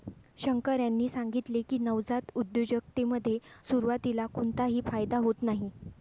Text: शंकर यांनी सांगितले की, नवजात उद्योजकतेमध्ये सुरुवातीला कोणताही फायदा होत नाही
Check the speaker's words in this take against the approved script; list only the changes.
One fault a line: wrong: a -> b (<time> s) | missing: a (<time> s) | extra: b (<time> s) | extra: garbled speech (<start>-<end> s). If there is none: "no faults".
no faults